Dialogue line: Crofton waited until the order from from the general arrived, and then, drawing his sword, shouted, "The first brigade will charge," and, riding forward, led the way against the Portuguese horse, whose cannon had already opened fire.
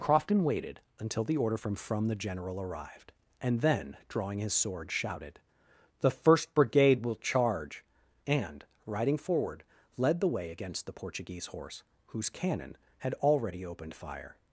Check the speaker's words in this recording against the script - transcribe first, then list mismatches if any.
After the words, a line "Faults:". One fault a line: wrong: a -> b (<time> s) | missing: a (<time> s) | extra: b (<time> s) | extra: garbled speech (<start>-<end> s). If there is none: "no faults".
Crofton waited until the order from from the general arrived, and then, drawing his sword, shouted, "The first brigade will charge," and, riding forward, led the way against the Portuguese horse, whose cannon had already opened fire.
Faults:
no faults